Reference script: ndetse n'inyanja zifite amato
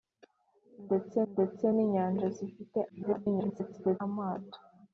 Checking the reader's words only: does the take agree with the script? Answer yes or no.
no